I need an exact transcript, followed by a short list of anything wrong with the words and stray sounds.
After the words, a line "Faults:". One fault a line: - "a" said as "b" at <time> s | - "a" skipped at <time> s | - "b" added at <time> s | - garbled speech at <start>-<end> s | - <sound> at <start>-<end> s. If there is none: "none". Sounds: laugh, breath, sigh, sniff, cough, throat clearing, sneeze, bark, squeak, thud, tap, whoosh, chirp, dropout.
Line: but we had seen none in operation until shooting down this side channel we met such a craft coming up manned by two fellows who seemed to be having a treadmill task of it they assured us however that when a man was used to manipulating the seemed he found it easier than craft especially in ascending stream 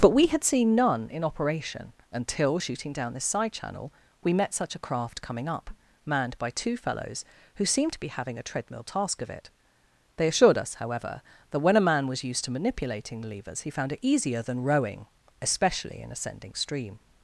but we had seen none in operation until shooting down this side channel we met such a craft coming up manned by two fellows who seemed to be having a treadmill task of it they assured us however that when a man was used to manipulating the levers he found it easier than rowing especially in ascending stream
Faults:
- "seemed" said as "levers" at 13.3 s
- "craft" said as "rowing" at 14.6 s